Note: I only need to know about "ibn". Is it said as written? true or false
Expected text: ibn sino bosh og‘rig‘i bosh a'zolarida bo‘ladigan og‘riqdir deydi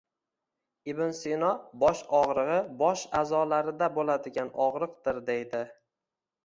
true